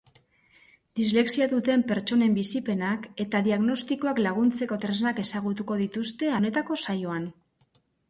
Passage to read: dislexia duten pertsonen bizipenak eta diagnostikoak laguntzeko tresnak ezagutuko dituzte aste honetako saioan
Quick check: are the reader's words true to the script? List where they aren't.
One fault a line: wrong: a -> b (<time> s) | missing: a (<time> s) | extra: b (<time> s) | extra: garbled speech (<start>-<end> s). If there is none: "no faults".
missing: aste (6.3 s)